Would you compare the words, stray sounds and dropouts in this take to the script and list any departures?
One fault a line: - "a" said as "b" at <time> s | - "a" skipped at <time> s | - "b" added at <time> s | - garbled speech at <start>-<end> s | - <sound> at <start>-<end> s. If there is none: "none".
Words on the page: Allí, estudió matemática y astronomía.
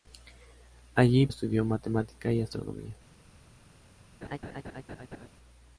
- laugh at 4.2-5.3 s